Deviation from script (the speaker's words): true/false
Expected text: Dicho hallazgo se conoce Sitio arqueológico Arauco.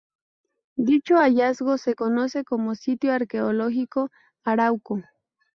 true